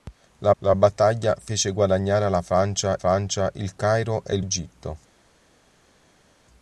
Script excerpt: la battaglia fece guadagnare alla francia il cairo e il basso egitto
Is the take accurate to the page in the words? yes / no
no